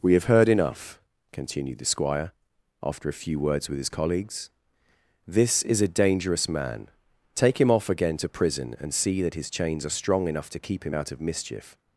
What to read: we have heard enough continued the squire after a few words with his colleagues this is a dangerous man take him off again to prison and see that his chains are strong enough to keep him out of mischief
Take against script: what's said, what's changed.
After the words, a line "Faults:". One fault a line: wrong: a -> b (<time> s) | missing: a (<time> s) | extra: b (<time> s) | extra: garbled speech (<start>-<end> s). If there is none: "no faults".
we have heard enough continued the squire after a few words with his colleagues this is a dangerous man take him off again to prison and see that his chains are strong enough to keep him out of mischief
Faults:
no faults